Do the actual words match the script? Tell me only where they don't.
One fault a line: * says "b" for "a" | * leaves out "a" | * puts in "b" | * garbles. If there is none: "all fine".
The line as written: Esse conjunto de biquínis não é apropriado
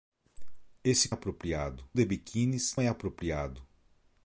* says "apropriado" for "conjunto"
* leaves out "não"